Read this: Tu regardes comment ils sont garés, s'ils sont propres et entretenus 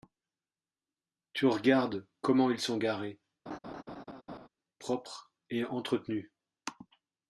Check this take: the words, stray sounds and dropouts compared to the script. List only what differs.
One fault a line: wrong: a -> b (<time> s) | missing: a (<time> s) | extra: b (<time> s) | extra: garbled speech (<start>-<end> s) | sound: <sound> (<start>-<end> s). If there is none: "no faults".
missing: s'ils sont (3.2 s)
sound: laugh (3.5-4.5 s)